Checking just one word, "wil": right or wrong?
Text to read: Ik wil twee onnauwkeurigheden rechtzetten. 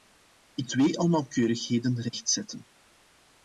wrong